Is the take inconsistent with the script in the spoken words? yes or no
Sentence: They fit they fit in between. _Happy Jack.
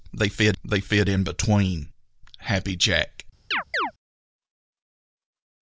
no